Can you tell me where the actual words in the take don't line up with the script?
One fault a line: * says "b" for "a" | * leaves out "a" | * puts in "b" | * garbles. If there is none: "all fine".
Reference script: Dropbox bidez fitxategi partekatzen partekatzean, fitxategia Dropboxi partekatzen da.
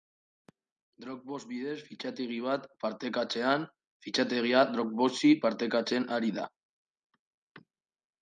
* says "bat" for "partekatzen"
* puts in "ari"